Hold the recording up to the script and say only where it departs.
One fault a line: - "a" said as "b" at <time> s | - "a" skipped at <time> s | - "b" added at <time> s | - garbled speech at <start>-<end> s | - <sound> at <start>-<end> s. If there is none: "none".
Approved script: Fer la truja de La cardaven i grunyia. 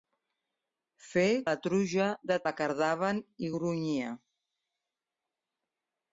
none